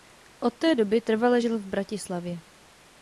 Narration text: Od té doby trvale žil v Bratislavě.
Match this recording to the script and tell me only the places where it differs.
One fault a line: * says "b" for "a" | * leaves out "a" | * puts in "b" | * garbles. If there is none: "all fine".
all fine